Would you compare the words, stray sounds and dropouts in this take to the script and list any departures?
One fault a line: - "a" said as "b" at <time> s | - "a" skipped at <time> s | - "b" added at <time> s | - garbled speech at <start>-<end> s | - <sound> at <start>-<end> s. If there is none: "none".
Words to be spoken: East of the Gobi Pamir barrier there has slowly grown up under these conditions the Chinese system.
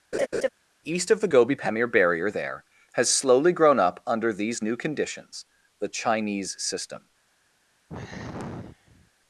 - laugh at 0.1-0.5 s
- "new" added at 4.6 s
- sigh at 7.9-9.1 s